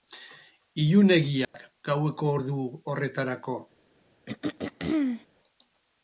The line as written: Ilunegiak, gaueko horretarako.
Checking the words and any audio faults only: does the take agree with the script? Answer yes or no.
no